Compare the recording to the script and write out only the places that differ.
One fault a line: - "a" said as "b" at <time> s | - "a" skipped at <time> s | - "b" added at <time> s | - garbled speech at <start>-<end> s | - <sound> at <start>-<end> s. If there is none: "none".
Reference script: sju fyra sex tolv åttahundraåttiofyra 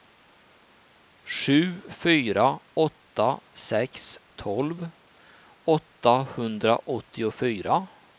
- "åtta" added at 2.7 s